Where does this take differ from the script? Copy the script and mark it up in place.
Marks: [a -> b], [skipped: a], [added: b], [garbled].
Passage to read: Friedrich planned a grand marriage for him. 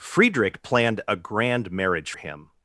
Friedrich planned a grand marriage [skipped: for] him.